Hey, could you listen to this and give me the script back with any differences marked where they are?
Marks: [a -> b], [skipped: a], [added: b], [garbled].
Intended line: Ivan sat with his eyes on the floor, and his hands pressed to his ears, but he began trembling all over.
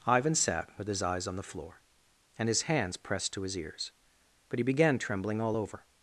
Ivan sat with his eyes on the floor, and his hands pressed to his ears, but he began trembling all over.